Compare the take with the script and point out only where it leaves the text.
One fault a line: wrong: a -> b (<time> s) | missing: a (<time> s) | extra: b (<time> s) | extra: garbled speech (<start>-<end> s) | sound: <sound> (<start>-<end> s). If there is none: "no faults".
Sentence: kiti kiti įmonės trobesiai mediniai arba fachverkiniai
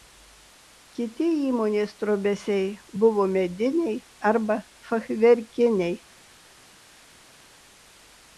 missing: kiti (1.2 s)
extra: buvo (3.0 s)